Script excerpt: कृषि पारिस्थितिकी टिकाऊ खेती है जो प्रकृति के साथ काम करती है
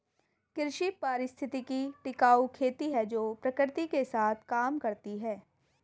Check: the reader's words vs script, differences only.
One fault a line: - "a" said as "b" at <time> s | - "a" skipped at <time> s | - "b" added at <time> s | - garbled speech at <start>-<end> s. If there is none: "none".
none